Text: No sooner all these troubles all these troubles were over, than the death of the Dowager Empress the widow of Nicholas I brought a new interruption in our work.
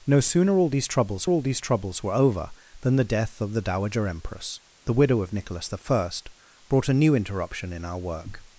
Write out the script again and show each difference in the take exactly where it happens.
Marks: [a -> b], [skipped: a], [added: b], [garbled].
No sooner all these troubles all these troubles were over, than the death of the Dowager Empress the widow of Nicholas I brought a new interruption in our work.